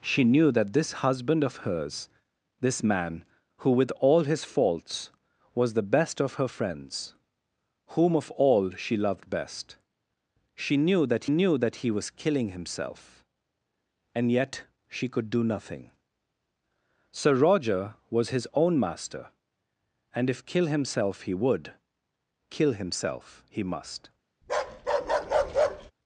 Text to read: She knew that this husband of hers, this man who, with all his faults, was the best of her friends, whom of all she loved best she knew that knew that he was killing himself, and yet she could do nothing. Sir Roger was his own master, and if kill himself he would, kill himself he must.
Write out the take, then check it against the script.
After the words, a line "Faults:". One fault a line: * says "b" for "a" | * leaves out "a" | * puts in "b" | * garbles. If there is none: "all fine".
She knew that this husband of hers, this man who, with all his faults, was the best of her friends, whom of all she loved best she knew that knew that he was killing himself, and yet she could do nothing. Sir Roger was his own master, and if kill himself he would, kill himself he must.
Faults:
all fine